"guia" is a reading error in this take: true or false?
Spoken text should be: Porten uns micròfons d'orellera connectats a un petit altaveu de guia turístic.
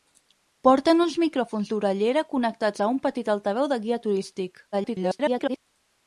false